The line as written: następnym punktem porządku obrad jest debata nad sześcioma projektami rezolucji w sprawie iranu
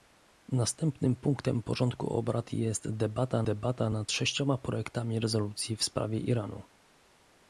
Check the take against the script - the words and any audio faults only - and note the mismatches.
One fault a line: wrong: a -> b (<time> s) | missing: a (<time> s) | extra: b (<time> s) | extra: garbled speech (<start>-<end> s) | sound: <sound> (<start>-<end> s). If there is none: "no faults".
extra: debata (3.4 s)